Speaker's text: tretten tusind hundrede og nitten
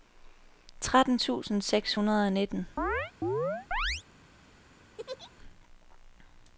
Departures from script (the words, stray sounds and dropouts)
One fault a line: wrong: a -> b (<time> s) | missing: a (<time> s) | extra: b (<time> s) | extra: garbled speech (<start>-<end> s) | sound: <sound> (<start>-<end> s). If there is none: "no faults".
extra: seks (1.6 s)
sound: chirp (2.8-4.0 s)
sound: laugh (5.0-5.3 s)